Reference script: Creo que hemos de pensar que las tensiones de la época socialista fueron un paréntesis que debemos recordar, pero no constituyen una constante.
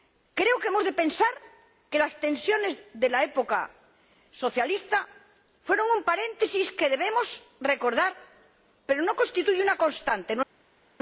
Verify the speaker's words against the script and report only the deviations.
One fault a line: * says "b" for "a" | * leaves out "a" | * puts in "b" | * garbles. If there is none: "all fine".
all fine